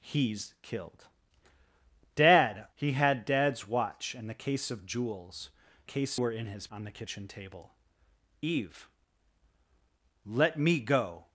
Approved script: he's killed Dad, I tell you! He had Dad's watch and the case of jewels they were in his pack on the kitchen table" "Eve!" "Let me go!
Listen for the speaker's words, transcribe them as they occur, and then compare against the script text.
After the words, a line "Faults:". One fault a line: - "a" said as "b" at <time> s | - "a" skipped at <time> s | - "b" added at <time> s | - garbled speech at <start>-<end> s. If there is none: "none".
he's killed Dad! He had Dad's watch and the case of jewels case were in his on the kitchen table" "Eve!" "Let me go!
Faults:
- "I tell you" skipped at 2.6 s
- "they" said as "case" at 5.8 s
- "pack" skipped at 6.7 s